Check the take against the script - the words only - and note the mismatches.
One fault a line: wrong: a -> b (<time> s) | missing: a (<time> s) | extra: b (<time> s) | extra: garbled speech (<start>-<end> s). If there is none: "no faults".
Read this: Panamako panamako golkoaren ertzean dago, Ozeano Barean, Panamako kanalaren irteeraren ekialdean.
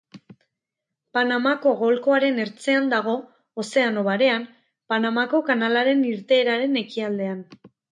missing: panamako (1.7 s)